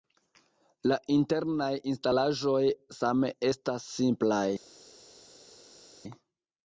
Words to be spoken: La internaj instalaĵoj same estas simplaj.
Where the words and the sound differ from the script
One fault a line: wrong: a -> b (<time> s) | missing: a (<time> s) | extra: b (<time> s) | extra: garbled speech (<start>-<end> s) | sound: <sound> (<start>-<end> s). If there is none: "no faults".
no faults